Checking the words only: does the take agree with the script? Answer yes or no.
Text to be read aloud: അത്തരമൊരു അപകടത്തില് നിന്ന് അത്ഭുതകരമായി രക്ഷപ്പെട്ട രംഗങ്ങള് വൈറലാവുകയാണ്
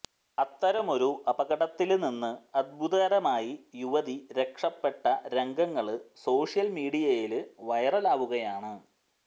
no